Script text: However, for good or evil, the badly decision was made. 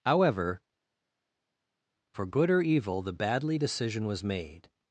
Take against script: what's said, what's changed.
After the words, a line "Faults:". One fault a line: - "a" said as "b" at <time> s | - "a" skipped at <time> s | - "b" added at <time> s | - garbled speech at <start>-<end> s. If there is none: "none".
However, for good or evil, the badly decision was made.
Faults:
none